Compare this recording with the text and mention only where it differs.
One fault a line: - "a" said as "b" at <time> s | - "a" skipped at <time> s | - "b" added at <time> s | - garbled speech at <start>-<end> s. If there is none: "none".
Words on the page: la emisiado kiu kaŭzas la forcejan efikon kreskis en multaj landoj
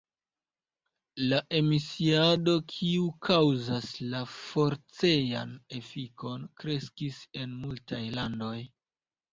none